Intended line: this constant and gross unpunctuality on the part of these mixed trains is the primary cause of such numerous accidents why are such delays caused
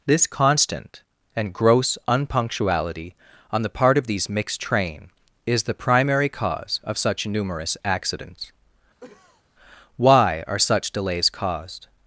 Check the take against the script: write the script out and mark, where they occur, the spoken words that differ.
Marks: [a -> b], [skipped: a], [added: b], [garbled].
this constant and gross unpunctuality on the part of these mixed [trains -> train] is the primary cause of such numerous accidents why are such delays caused